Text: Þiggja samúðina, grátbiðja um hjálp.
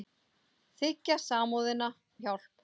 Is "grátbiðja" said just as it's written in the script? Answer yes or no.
no